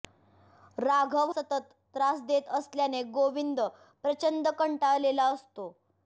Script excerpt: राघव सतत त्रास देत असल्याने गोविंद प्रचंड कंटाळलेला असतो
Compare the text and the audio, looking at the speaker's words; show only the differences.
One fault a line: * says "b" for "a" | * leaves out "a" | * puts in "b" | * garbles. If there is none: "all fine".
all fine